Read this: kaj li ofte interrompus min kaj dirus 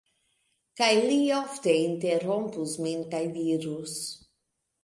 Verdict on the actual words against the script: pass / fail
pass